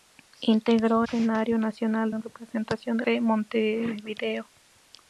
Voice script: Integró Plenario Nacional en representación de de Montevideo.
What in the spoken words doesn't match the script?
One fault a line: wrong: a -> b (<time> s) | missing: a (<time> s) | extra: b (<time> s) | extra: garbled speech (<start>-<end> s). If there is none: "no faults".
no faults